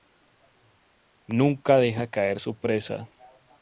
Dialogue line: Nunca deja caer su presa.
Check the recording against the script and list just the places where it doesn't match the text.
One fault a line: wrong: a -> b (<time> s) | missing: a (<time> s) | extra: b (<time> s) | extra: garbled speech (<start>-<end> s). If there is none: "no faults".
no faults